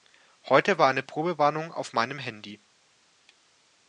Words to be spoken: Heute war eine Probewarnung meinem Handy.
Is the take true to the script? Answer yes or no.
no